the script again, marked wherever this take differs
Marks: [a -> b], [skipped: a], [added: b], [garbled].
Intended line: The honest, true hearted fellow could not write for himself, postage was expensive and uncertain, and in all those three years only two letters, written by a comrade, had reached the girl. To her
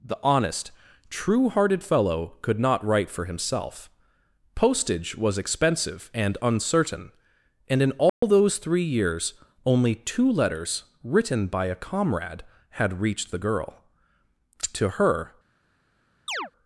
The honest, true hearted fellow could not write for himself, postage was expensive and uncertain, and in all those three years only two letters, written by a comrade, had reached the girl. To her